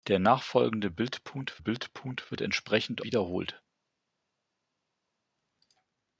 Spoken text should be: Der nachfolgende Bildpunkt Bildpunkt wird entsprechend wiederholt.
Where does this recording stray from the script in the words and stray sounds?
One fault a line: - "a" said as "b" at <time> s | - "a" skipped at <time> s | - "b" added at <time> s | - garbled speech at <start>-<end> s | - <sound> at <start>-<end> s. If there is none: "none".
none